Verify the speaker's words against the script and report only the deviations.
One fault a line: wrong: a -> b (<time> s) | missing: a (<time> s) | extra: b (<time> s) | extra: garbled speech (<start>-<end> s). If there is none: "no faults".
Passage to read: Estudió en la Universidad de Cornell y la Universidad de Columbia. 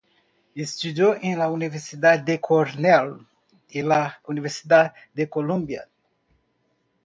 no faults